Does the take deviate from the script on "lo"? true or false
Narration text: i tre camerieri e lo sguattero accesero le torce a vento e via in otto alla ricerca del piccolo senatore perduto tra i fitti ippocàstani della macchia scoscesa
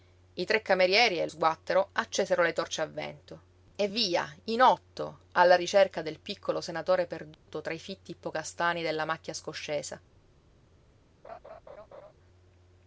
true